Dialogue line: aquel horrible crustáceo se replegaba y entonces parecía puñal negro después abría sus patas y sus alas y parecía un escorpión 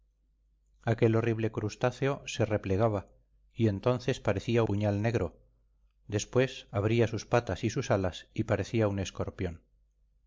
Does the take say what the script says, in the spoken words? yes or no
yes